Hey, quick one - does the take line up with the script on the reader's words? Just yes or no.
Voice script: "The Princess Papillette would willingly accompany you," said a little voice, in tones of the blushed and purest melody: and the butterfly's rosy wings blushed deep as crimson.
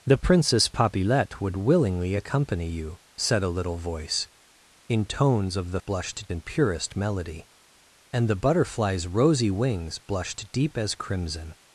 yes